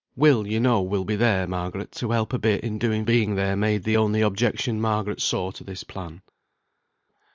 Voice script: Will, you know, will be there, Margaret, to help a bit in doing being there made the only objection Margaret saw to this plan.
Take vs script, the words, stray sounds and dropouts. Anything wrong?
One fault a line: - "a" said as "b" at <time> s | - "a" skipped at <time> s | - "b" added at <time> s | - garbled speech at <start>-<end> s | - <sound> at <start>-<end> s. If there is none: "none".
none